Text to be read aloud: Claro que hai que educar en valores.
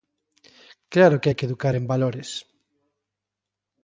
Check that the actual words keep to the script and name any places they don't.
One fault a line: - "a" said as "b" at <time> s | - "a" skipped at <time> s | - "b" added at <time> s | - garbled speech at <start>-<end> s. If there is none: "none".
none